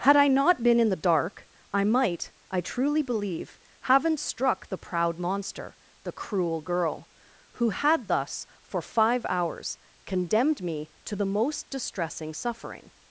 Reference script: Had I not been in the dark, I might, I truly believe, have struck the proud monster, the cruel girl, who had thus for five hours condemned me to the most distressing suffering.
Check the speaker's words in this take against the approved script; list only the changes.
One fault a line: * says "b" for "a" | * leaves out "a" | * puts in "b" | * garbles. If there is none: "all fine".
* says "haven't" for "have"